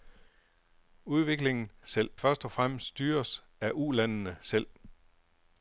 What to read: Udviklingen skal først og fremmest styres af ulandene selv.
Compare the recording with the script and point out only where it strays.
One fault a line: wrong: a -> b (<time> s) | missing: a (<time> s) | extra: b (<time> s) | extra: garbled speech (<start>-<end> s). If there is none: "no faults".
wrong: skal -> selv (1.8 s)